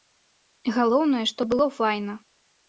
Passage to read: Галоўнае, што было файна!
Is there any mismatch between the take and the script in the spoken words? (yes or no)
no